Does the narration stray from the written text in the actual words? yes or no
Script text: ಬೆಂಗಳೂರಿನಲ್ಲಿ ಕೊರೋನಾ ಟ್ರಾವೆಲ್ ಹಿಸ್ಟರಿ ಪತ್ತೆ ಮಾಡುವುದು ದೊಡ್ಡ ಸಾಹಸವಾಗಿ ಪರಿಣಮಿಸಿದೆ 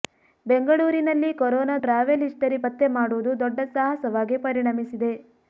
no